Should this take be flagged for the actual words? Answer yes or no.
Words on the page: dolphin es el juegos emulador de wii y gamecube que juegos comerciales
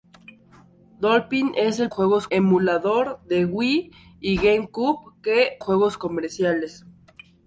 no